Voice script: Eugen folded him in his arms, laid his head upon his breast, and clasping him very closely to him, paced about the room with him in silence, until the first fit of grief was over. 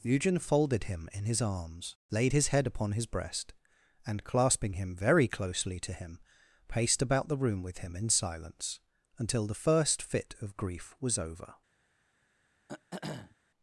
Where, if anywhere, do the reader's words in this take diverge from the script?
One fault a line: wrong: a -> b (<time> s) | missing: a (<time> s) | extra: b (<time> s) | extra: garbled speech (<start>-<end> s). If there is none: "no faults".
no faults